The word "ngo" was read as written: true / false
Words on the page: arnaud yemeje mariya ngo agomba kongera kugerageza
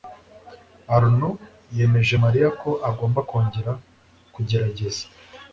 false